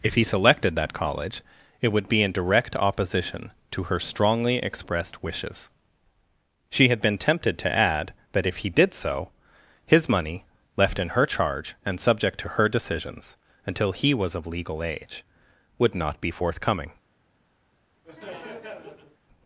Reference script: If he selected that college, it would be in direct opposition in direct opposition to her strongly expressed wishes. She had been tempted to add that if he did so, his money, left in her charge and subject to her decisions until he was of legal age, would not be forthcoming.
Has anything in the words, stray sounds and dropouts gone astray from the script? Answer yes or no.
yes